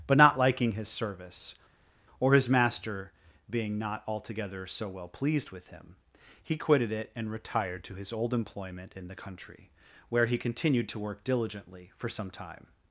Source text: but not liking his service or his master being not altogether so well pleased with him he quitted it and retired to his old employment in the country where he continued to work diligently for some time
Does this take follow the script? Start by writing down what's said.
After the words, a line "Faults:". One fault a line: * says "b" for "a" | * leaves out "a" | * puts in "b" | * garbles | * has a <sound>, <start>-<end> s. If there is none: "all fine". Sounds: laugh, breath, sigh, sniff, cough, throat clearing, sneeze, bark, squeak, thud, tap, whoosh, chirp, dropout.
but not liking his service or his master being not altogether so well pleased with him he quitted it and retired to his old employment in the country where he continued to work diligently for some time
Faults:
all fine